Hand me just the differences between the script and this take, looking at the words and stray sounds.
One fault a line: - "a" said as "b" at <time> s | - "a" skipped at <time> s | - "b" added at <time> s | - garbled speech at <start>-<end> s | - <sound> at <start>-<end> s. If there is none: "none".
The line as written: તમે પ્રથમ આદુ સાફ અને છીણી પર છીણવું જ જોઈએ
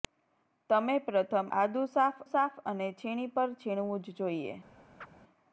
- "સાફ" added at 2.3 s
- chirp at 5.0-5.1 s